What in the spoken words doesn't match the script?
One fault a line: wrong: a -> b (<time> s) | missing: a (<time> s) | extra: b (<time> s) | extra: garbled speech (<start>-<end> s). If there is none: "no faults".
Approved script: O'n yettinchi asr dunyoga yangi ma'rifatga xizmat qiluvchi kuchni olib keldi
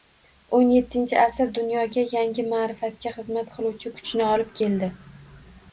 no faults